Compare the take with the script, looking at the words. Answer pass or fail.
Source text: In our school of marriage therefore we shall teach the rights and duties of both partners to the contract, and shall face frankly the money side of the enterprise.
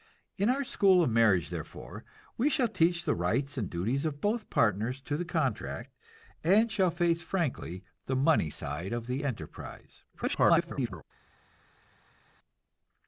fail